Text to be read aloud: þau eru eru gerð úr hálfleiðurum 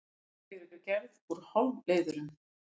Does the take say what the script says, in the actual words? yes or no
yes